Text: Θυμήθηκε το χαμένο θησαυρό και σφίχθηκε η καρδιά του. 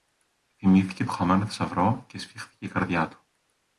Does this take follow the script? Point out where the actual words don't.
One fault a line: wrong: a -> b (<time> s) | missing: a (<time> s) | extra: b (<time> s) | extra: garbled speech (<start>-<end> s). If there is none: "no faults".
no faults